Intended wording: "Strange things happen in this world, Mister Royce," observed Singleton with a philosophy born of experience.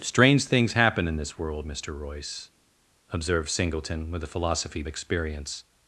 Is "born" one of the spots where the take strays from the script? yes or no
yes